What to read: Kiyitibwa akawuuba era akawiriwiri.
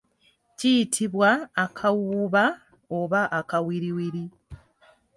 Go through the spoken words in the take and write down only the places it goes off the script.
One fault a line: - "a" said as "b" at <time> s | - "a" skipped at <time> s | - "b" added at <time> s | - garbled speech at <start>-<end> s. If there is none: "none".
- "era" said as "oba" at 3.0 s